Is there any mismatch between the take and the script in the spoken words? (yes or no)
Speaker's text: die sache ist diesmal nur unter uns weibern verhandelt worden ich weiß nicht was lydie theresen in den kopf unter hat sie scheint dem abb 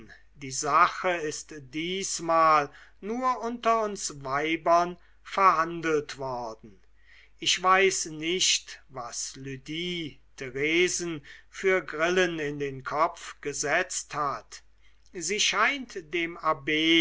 yes